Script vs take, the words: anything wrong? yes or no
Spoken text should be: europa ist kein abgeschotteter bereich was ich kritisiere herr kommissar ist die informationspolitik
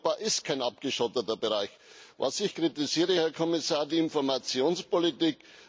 no